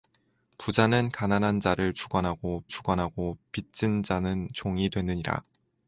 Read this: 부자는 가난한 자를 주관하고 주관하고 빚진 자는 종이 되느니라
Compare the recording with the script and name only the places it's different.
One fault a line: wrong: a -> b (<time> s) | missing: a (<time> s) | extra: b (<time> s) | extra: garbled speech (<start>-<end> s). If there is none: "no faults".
no faults